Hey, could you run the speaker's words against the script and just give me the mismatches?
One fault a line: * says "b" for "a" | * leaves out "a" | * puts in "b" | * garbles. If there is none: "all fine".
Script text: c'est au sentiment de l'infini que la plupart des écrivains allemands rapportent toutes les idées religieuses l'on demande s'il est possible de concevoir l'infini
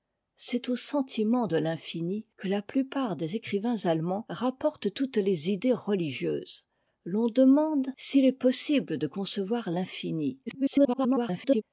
* garbles